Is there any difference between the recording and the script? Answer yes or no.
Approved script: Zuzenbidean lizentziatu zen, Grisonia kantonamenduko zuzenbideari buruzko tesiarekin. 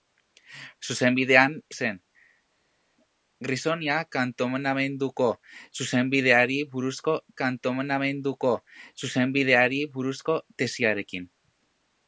yes